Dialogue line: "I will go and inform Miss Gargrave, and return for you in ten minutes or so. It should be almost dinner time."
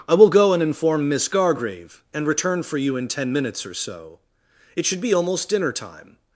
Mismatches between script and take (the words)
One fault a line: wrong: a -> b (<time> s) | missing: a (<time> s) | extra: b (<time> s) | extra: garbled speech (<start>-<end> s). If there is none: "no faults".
no faults